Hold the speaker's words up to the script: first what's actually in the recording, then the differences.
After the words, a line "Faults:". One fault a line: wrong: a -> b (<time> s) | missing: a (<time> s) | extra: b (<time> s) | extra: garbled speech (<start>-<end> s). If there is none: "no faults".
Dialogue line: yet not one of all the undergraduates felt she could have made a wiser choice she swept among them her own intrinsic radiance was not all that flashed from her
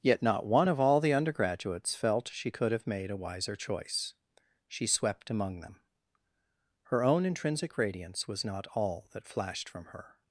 yet not one of all the undergraduates felt she could have made a wiser choice she swept among them her own intrinsic radiance was not all that flashed from her
Faults:
no faults